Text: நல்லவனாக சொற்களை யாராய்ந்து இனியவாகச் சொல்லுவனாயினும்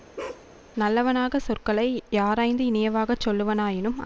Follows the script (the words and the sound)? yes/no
no